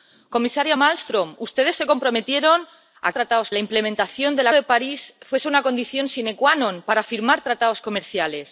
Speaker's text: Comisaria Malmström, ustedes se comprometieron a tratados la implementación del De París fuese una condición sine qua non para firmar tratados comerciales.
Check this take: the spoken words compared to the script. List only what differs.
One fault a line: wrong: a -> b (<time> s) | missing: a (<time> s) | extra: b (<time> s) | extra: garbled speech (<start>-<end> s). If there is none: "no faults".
no faults